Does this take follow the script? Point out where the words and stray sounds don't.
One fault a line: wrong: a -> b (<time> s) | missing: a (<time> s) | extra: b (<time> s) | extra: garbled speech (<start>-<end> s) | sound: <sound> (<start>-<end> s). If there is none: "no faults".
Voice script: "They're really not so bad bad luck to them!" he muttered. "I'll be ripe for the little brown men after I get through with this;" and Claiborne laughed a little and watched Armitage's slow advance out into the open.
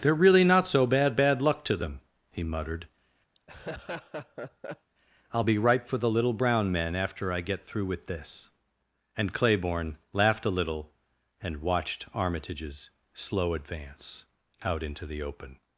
sound: laugh (3.4-4.9 s)
wrong: ripe -> right (5.6 s)